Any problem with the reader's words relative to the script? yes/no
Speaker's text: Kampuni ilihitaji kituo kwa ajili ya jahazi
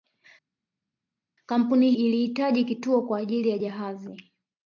no